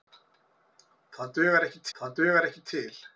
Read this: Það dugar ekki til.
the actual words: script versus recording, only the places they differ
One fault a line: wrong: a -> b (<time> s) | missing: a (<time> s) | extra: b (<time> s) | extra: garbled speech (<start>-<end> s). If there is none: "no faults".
extra: það dugar ekki (2.0 s)